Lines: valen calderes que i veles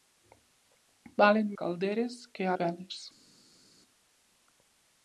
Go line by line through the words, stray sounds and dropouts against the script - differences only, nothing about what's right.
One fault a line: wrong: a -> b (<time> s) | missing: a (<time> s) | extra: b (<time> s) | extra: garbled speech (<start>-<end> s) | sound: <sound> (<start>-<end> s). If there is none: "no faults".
no faults